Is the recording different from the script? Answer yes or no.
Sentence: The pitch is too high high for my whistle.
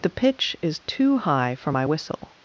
yes